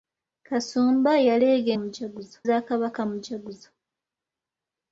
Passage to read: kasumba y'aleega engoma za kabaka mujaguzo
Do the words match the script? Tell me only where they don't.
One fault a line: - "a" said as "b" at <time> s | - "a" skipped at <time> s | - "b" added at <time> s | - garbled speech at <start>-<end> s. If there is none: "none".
- "engoma" said as "mujaguzo" at 1.8 s